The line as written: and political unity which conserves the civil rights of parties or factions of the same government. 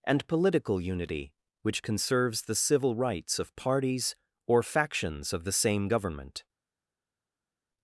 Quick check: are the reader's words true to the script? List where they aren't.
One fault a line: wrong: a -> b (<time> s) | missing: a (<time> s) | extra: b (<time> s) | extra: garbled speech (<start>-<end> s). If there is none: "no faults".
no faults